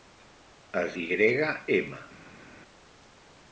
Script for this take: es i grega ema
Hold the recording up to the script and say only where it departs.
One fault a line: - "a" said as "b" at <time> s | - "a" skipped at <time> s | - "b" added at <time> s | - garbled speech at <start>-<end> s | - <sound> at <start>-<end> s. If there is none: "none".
none